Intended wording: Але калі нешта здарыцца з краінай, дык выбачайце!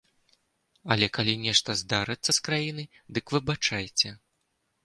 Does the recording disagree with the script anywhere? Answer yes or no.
no